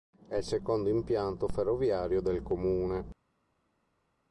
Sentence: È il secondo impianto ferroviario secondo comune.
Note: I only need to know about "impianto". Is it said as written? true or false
true